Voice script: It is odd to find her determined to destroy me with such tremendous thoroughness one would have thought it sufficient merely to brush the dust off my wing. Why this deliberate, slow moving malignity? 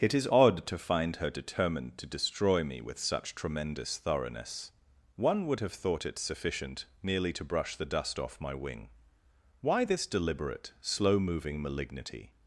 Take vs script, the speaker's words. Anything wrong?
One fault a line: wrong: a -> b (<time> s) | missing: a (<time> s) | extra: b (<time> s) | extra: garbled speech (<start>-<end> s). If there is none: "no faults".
no faults